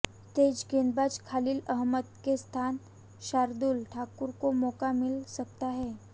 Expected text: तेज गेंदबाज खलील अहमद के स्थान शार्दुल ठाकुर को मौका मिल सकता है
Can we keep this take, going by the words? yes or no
yes